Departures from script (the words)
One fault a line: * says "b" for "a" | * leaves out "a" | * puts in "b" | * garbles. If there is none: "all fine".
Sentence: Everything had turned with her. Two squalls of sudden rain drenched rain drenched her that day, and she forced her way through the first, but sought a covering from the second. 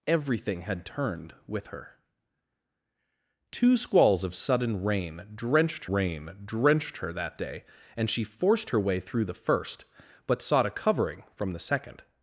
all fine